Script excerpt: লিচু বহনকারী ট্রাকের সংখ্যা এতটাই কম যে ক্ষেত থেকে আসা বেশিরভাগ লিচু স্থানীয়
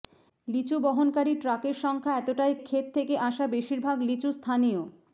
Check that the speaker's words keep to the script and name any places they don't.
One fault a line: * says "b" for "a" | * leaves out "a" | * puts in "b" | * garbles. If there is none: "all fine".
* leaves out "কম যে"